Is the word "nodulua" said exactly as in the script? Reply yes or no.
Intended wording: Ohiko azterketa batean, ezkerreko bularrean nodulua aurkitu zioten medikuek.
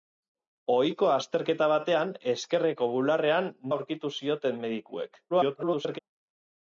no